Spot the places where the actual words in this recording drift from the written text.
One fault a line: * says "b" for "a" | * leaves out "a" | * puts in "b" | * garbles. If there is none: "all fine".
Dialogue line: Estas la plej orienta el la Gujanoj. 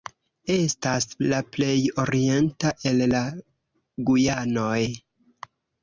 all fine